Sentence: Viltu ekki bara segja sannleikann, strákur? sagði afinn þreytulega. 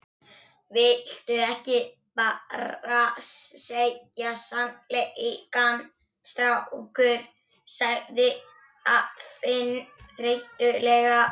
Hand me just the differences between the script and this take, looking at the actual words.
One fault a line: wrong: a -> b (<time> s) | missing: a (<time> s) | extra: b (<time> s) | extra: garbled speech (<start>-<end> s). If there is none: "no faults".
no faults